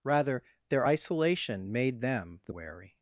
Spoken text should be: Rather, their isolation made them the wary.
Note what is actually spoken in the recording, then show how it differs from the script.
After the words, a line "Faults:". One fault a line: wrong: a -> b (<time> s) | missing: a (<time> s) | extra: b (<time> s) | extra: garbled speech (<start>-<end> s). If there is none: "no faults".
Rather, their isolation made them the wary.
Faults:
no faults